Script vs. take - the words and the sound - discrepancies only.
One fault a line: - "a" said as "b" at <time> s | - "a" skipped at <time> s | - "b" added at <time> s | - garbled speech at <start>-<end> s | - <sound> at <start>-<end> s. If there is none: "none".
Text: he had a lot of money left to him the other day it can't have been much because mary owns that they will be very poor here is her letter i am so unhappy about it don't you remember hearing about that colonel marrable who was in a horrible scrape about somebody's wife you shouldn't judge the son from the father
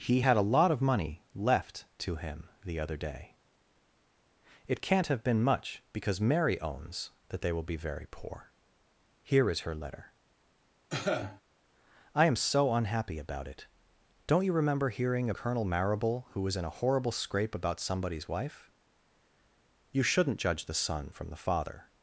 - cough at 10.9-11.4 s
- "about that" skipped at 15.3 s